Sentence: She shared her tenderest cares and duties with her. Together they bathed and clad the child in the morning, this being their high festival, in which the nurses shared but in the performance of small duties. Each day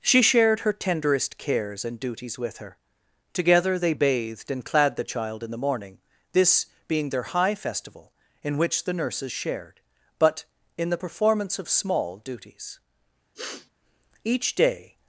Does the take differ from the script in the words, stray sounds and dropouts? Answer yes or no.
yes